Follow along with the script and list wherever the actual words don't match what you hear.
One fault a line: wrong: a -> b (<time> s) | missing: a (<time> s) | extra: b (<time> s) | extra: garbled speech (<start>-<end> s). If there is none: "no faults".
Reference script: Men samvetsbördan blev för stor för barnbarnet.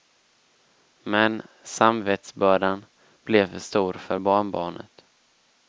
no faults